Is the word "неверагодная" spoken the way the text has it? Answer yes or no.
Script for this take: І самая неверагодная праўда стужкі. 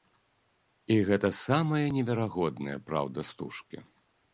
yes